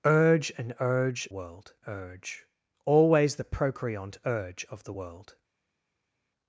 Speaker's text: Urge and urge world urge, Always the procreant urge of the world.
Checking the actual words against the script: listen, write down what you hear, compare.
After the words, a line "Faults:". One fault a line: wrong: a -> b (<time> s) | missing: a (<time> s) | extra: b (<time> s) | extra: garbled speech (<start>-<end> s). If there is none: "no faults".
Urge and urge world urge, Always the procreant urge of the world.
Faults:
no faults